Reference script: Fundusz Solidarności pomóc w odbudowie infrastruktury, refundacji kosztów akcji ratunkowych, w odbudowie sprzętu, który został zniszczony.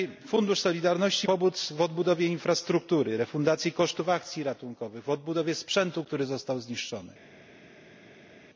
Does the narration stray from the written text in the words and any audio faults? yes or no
no